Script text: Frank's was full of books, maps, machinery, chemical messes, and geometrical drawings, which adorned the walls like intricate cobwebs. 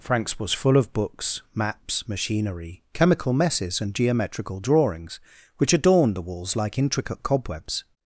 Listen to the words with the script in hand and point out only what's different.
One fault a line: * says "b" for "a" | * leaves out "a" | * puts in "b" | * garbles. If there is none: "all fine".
all fine